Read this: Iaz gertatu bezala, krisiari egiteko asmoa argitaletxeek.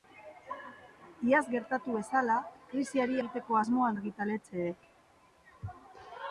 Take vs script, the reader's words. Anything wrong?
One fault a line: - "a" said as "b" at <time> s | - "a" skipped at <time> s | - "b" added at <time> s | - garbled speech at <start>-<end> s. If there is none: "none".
none